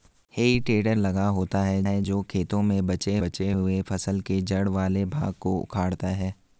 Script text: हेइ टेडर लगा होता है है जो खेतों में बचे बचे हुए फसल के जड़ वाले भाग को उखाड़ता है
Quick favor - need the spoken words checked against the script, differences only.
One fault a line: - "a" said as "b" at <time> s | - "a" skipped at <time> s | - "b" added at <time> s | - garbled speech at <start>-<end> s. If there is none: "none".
none